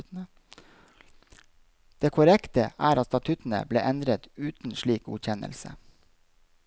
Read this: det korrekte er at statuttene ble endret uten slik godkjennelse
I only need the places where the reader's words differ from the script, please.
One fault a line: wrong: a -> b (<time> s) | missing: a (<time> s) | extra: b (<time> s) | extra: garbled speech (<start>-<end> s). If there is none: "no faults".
no faults